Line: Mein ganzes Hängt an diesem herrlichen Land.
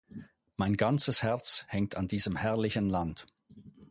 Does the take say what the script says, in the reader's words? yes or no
no